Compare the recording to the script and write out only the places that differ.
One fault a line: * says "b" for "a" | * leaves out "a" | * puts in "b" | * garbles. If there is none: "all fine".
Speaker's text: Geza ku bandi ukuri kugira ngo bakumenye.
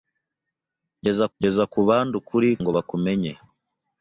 * puts in "geza"
* leaves out "kugira"